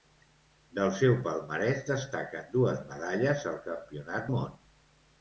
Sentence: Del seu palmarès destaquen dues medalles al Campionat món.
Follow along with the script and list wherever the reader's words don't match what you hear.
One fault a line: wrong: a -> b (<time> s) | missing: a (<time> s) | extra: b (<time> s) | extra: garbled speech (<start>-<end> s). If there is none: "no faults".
no faults